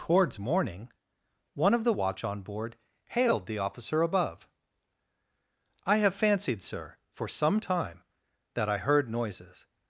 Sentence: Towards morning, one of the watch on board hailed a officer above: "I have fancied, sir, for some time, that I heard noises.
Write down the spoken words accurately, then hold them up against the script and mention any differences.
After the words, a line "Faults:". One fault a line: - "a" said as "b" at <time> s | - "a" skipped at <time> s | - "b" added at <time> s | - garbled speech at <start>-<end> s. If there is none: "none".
Towards morning, one of the watch on board hailed the officer above: "I have fancied, sir, for some time, that I heard noises.
Faults:
- "a" said as "the" at 3.5 s